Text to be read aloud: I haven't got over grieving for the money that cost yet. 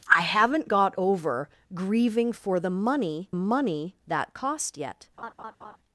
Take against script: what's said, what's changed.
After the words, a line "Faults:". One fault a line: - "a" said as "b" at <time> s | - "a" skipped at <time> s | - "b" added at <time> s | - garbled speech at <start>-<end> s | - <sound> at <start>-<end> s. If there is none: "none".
I haven't got over grieving for the money money that cost yet.
Faults:
- "money" added at 3.3 s
- laugh at 5.2-5.8 s